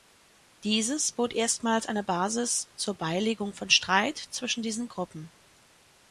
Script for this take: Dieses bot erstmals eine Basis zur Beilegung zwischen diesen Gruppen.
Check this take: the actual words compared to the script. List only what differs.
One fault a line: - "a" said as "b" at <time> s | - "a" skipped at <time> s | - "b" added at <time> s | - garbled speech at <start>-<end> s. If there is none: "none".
- "von Streit" added at 3.5 s